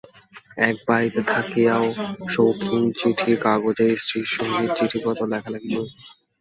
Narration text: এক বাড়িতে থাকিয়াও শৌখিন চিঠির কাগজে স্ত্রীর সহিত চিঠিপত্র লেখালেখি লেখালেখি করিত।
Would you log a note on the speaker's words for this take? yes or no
yes